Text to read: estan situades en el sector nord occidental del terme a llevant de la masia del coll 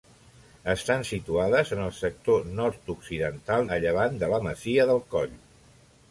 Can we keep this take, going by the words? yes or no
no